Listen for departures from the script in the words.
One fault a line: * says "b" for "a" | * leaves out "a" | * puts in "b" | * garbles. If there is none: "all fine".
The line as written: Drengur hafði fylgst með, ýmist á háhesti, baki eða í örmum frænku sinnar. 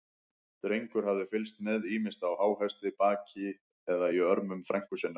all fine